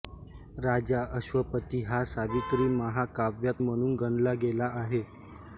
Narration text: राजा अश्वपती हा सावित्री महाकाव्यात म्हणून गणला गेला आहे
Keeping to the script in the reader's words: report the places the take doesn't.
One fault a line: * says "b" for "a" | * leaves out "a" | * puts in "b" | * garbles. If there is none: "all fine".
all fine